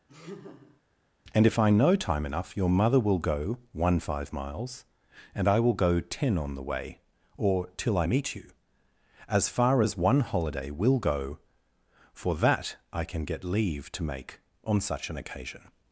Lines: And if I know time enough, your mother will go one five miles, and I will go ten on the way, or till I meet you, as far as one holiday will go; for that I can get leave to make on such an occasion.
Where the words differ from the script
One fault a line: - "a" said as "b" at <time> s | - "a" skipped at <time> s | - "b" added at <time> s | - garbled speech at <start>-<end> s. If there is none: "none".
none